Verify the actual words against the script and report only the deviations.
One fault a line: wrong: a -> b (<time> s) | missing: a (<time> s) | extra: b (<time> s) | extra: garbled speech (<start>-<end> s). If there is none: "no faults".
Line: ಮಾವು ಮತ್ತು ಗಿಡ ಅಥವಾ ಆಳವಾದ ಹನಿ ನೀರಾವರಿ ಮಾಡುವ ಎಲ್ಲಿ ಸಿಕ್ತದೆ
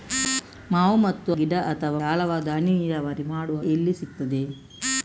no faults